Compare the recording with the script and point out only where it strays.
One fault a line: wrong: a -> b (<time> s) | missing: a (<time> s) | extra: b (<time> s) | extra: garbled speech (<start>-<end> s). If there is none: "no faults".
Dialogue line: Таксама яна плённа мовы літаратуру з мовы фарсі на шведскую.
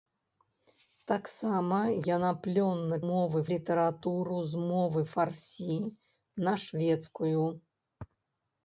no faults